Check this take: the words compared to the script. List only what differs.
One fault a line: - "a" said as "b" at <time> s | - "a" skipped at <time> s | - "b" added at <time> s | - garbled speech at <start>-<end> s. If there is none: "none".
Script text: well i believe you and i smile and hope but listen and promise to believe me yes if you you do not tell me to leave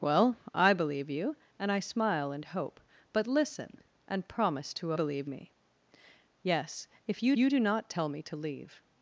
none